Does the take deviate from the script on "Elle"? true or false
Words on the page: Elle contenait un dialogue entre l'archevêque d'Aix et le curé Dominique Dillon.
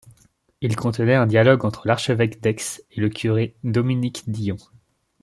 true